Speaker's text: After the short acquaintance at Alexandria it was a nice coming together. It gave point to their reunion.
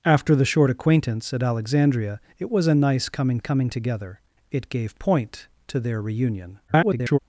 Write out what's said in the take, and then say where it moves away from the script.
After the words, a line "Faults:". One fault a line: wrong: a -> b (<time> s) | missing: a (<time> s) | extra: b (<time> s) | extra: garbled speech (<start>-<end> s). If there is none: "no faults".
After the short acquaintance at Alexandria it was a nice coming coming together. It gave point to their reunion. [garbled]
Faults:
extra: coming (3.4 s)
extra: garbled speech (6.7-7.2 s)